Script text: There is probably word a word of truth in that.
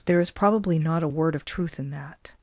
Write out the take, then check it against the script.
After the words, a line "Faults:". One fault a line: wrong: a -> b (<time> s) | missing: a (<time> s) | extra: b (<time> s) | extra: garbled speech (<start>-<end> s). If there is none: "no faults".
There is probably not a word of truth in that.
Faults:
wrong: word -> not (0.8 s)